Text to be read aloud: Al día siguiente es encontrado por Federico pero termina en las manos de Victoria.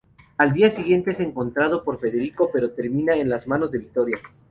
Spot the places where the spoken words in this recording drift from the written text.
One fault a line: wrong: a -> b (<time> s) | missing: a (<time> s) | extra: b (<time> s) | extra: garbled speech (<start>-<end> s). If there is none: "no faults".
no faults